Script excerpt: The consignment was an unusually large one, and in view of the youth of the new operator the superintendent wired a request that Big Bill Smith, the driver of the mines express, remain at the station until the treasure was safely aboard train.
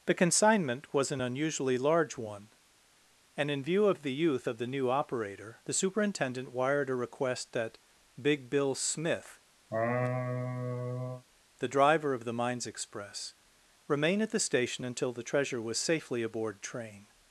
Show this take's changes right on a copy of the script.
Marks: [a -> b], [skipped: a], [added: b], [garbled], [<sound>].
The consignment was an unusually large one, and in view of the youth of the new operator the superintendent wired a request that Big Bill Smith, [laugh] the driver of the mines express, remain at the station until the treasure was safely aboard train.